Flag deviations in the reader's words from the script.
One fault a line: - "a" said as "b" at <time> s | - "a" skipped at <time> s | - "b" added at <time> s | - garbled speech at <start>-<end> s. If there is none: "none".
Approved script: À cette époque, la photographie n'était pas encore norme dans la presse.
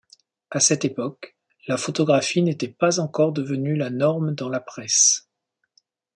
- "devenue la" added at 3.3 s